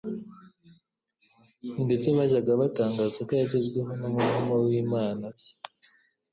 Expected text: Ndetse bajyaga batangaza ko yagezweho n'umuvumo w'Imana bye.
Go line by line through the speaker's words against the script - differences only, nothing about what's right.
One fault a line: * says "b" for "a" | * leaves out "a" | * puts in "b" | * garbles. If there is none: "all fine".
all fine